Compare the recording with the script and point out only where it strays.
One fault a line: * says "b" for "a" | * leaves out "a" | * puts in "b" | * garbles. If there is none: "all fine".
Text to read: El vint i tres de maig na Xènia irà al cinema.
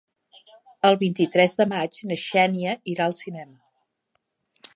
all fine